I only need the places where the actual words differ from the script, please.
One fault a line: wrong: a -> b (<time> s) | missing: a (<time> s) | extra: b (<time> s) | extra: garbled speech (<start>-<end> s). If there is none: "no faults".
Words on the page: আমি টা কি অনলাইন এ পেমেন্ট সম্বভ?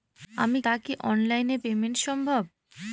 no faults